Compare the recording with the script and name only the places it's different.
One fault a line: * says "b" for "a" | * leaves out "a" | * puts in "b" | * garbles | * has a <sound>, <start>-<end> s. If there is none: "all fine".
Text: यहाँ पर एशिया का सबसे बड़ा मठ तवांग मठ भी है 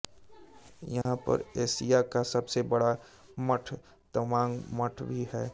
* has a dropout, 1.0-1.1 s